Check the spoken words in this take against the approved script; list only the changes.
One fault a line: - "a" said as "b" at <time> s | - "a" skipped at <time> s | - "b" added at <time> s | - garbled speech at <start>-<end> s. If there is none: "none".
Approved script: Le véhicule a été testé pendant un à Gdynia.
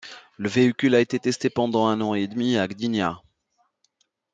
- "an et demi" added at 2.0 s